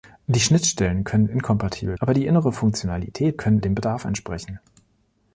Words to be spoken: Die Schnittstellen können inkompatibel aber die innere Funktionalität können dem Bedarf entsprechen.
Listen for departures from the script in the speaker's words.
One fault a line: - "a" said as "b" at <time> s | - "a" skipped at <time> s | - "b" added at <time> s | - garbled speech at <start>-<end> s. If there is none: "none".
none